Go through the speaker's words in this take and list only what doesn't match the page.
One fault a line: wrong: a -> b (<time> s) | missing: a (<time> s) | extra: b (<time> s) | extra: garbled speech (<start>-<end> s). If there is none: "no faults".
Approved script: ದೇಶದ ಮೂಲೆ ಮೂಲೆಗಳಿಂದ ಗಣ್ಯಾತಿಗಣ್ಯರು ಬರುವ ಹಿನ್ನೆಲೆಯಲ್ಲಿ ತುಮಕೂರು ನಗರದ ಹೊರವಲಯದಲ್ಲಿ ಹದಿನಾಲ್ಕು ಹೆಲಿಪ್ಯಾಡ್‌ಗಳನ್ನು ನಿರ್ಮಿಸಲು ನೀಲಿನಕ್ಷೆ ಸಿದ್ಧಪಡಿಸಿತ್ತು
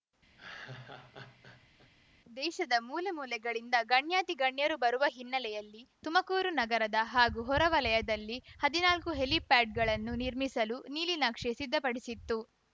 extra: ಹಾಗೂ (7.1 s)